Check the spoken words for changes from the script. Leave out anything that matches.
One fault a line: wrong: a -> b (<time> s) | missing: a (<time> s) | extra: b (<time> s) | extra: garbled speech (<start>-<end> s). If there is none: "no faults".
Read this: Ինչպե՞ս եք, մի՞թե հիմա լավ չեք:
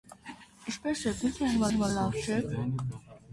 extra: հիմա (1.7 s)